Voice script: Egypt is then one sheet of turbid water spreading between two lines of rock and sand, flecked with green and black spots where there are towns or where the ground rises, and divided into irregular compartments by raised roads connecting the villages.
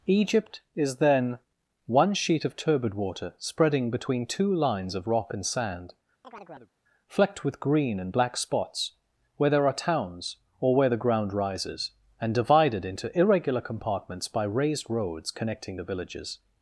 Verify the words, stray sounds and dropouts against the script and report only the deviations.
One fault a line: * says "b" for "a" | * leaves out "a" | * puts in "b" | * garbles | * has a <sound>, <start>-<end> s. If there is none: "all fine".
* has a chirp, 6.2-6.7 s